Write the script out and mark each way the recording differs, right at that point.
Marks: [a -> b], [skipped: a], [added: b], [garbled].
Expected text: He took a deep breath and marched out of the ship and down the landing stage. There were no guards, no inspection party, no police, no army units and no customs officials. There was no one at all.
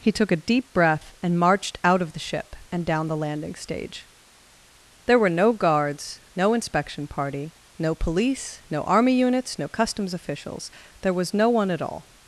He took a deep breath and marched out of the ship and down the landing stage. There were no guards, no inspection party, no police, no army units [skipped: and] no customs officials. There was no one at all.